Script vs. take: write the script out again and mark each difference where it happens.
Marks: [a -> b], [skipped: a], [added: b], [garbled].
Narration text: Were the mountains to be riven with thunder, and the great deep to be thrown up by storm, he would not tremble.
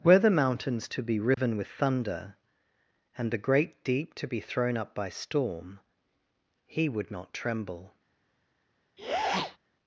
Were the mountains to be riven with thunder, and the great deep to be thrown up by storm, he would not tremble.